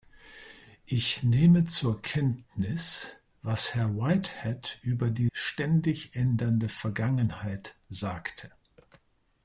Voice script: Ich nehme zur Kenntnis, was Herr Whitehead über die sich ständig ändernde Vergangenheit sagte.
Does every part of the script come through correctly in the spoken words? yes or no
no